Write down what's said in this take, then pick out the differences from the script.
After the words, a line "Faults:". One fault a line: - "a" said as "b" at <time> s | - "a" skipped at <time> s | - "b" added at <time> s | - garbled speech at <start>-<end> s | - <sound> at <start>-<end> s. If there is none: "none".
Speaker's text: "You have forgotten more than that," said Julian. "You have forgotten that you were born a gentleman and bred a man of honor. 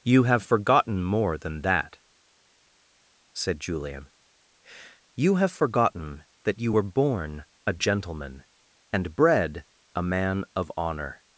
"You have forgotten more than that," said Julian. "You have forgotten that you were born a gentleman and bred a man of honor.
Faults:
none